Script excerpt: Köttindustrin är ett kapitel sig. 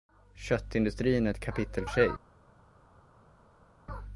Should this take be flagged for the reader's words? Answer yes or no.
no